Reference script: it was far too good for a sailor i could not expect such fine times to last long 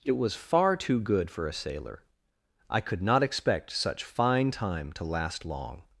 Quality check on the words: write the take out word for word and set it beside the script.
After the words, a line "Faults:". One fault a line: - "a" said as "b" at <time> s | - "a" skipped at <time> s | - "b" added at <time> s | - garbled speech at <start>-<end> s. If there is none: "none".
it was far too good for a sailor i could not expect such fine time to last long
Faults:
- "times" said as "time" at 4.5 s